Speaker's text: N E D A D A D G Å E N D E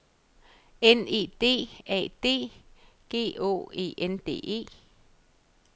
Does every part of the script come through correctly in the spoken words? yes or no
no